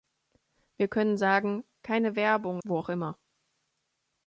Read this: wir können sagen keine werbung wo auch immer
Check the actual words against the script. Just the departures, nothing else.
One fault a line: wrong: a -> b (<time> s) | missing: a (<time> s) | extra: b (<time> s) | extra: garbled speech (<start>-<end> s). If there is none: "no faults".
no faults